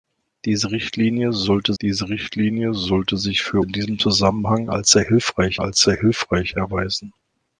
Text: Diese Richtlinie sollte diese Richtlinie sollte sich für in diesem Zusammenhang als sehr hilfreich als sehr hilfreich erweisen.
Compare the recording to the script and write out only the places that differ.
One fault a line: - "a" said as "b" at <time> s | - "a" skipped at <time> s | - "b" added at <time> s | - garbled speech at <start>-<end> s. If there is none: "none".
none